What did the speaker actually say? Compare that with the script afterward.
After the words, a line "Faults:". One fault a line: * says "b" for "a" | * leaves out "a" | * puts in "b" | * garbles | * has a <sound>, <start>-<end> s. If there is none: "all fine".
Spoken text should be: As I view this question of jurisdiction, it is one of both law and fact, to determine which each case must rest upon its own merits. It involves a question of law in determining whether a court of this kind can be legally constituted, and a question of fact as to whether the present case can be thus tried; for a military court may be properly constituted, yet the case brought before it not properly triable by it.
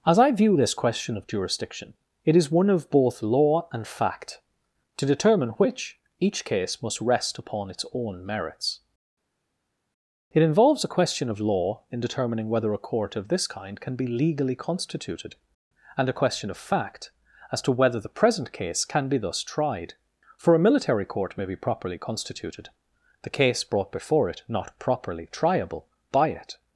As I view this question of jurisdiction, it is one of both law and fact, to determine which each case must rest upon its own merits. It involves a question of law in determining whether a court of this kind can be legally constituted, and a question of fact as to whether the present case can be thus tried; for a military court may be properly constituted, the case brought before it not properly triable by it.
Faults:
* leaves out "yet"